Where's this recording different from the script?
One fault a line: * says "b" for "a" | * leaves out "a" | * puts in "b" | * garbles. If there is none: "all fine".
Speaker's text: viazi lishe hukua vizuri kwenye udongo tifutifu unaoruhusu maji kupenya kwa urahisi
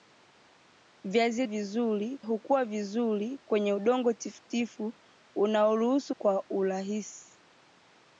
* says "vizuri" for "lishe"
* leaves out "maji kupenya"